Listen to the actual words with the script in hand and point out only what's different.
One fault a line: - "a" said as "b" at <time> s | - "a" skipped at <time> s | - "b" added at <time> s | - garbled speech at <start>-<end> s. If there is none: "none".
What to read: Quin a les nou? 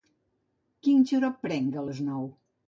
- "xarop prenc" added at 1.1 s